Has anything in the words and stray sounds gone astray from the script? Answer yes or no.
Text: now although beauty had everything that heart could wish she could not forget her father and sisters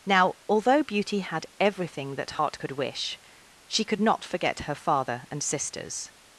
no